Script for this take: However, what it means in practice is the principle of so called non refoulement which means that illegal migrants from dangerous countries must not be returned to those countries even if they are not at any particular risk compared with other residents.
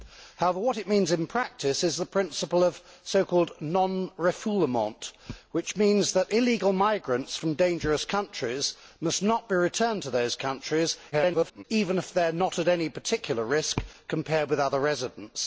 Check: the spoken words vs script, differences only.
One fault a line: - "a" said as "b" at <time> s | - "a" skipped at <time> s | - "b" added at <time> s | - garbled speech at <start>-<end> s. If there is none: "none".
- garbled speech at 11.1-11.6 s